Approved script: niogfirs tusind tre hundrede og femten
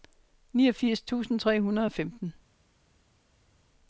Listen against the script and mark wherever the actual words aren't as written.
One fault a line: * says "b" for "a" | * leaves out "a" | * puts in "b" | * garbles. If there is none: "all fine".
all fine